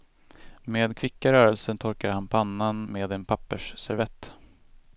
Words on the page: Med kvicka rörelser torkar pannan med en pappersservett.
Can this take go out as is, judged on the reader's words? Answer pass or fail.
fail